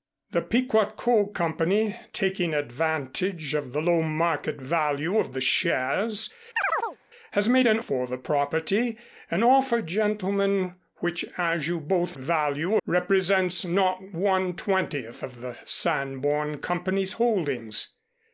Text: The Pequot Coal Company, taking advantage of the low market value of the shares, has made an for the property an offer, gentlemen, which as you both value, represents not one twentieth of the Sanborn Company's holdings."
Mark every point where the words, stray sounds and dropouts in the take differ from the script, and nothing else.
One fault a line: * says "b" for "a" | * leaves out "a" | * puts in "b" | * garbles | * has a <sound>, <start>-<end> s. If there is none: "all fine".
* has a chirp, 6.6-7.0 s